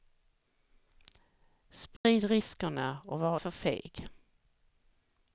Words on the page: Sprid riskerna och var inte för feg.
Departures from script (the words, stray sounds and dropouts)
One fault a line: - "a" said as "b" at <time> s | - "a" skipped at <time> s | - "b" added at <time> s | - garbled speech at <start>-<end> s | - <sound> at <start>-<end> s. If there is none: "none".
- dropout at 2.0-2.0 s
- "inte" skipped at 3.4 s